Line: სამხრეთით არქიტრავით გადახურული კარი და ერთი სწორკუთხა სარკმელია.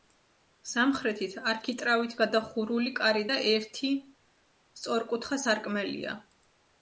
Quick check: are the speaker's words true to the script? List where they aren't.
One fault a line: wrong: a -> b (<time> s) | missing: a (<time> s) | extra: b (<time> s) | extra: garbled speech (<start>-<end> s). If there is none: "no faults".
no faults